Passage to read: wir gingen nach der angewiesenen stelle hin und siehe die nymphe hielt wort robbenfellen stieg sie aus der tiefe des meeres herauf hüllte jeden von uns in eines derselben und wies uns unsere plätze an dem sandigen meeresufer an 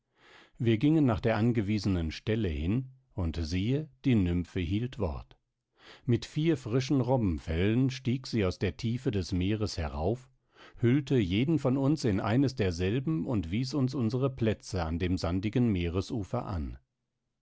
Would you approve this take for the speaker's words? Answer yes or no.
no